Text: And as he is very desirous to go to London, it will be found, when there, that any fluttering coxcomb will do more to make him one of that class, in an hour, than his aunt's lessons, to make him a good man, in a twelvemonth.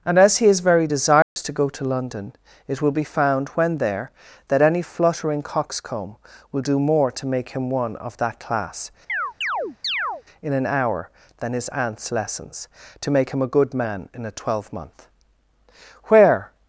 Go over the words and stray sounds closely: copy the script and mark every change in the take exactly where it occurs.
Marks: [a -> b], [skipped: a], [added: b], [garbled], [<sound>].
And as he is very desirous [dropout] to go to London, it will be found, when there, that any fluttering coxcomb will do more to make him one of that class, [chirp] in an hour, than his aunt's lessons, to make him a good man, in a twelvemonth. [added: Where]